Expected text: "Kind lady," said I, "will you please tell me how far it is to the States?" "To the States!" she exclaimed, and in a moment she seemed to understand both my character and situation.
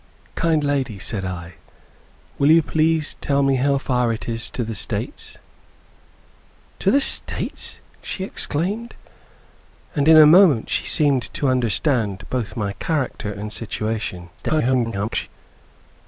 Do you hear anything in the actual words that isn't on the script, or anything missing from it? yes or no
yes